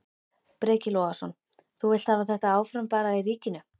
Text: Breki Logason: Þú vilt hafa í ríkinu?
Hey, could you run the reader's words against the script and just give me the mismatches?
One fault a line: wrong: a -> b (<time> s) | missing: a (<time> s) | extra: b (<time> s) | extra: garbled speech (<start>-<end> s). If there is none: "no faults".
extra: þetta áfram bara (2.3 s)